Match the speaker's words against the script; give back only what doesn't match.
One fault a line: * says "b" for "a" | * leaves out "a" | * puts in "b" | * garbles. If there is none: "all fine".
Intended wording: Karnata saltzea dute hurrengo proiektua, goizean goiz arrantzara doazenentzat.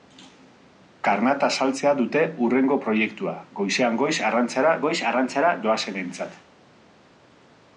* puts in "goiz arrantzara"